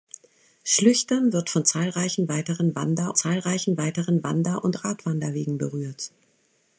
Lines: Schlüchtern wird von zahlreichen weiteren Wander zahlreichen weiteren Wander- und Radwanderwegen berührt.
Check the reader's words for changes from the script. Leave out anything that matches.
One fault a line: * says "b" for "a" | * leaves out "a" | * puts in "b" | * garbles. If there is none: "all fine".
all fine